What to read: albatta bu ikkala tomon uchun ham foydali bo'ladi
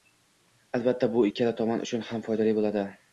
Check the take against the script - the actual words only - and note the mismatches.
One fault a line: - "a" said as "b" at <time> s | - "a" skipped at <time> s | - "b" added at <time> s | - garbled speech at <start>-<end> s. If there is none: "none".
none